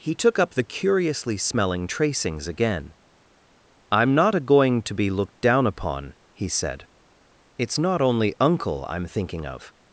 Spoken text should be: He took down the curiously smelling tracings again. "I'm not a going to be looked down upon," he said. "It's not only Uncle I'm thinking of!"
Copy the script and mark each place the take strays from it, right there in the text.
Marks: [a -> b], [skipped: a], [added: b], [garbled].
He took [down -> up] the curiously smelling tracings again. "I'm not a going to be looked down upon," he said. "It's not only Uncle I'm thinking of!"